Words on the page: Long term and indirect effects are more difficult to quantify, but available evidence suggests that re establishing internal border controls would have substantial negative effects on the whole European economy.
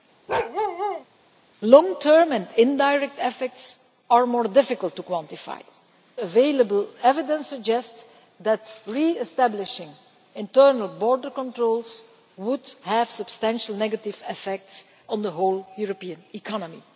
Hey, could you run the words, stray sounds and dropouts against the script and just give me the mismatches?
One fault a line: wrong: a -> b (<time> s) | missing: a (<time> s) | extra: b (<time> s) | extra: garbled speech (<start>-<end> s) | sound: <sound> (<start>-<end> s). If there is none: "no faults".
sound: bark (0.3-1.0 s)
missing: but (5.6 s)